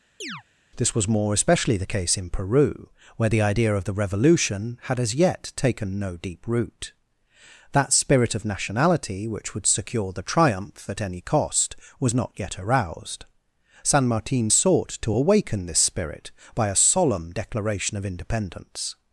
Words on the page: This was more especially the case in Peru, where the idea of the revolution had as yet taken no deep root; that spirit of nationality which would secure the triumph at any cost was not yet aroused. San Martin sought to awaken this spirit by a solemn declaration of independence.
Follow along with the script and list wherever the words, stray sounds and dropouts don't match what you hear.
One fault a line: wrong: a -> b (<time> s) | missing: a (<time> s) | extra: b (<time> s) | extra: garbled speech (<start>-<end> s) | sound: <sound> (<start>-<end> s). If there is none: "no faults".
sound: chirp (0.2-0.4 s)